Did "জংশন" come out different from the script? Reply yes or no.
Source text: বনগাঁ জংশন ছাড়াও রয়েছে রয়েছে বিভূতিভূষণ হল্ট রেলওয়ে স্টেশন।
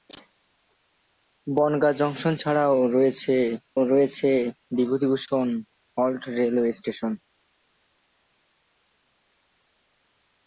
no